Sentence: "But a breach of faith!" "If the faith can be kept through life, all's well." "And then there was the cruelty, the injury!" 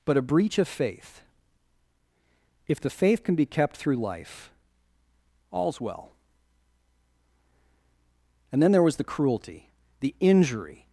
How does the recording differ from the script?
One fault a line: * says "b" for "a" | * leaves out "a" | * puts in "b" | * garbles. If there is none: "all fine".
all fine